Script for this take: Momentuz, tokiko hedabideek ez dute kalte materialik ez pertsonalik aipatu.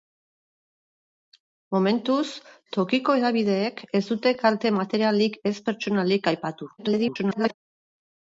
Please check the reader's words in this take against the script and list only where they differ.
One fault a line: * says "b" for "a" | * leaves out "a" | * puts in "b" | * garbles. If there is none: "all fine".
* garbles